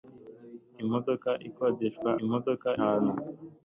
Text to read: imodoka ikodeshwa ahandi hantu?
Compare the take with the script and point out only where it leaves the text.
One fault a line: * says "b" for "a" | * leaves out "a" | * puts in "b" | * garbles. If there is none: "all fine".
* says "imodoka" for "ahandi"